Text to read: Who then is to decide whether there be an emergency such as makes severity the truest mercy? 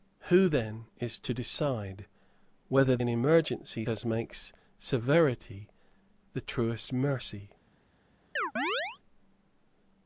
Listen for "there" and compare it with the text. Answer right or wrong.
wrong